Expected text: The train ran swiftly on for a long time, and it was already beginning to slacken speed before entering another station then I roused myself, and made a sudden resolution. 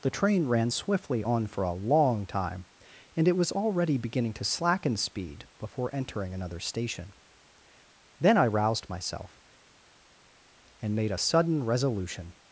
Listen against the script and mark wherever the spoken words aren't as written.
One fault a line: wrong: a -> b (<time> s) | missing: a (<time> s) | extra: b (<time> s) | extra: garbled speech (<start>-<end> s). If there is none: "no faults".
no faults